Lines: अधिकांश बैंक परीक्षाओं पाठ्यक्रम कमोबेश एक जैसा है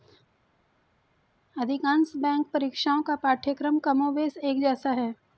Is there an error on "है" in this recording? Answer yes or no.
no